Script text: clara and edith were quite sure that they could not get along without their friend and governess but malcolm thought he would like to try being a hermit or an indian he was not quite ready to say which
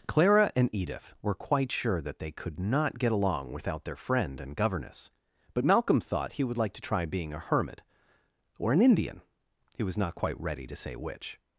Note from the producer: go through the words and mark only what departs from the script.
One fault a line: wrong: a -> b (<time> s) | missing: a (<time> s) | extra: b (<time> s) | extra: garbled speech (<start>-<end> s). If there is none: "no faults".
no faults